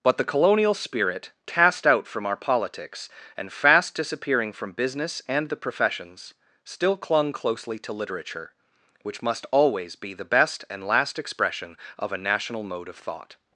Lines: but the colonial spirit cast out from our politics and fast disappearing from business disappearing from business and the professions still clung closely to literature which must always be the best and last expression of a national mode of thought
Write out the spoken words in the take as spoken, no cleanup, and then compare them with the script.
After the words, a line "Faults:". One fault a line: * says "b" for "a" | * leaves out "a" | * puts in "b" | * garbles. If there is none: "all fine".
but the colonial spirit cast out from our politics and fast disappearing from business and the professions still clung closely to literature which must always be the best and last expression of a national mode of thought
Faults:
* leaves out "disappearing from business"